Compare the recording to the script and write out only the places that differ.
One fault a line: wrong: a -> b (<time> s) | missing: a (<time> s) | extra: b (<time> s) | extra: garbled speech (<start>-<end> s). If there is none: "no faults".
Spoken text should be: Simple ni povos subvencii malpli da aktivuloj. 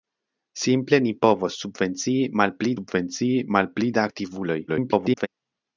extra: subvencii malpli (2.8 s)
extra: garbled speech (4.7-5.3 s)